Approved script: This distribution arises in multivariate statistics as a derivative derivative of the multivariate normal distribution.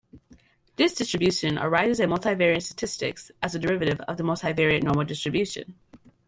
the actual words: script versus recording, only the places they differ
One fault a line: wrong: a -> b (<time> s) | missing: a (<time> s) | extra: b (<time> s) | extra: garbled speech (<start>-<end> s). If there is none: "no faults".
missing: derivative (4.0 s)